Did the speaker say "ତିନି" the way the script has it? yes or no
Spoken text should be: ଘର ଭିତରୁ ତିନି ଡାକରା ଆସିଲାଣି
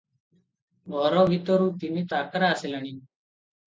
yes